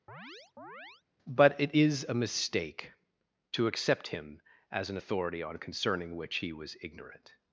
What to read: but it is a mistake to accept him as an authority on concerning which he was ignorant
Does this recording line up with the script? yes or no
yes